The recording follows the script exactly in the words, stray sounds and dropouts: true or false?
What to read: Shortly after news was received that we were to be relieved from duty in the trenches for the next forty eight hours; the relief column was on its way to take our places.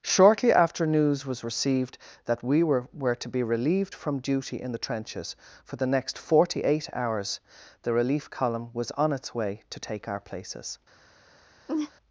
false